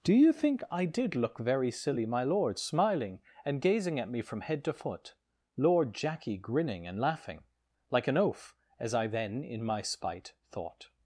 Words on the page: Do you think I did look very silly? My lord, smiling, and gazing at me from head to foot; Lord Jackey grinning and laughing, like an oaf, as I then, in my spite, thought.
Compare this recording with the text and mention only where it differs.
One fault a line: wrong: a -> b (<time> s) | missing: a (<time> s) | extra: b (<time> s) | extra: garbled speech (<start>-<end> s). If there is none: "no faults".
no faults